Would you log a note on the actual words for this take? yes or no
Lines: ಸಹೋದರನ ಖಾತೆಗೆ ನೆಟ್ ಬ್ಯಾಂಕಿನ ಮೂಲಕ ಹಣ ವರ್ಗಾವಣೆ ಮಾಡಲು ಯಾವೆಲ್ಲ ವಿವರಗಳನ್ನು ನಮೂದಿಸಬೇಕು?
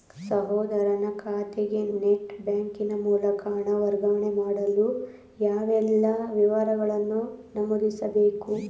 no